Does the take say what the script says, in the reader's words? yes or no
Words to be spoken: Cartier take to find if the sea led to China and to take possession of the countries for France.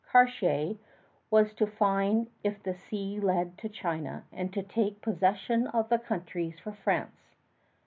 no